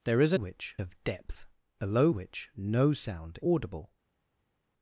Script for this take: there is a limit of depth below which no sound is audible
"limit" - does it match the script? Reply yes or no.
no